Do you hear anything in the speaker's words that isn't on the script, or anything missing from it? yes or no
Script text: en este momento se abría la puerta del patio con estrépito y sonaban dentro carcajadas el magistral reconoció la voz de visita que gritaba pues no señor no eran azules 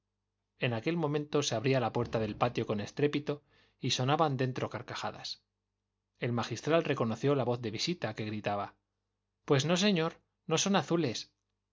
yes